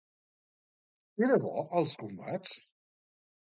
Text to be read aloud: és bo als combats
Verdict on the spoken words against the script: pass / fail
fail